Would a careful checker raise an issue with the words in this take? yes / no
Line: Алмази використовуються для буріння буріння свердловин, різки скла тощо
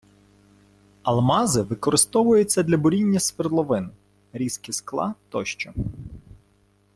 yes